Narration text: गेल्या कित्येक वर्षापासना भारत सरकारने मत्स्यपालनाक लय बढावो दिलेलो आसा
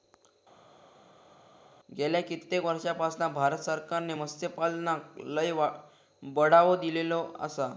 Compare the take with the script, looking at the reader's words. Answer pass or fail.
pass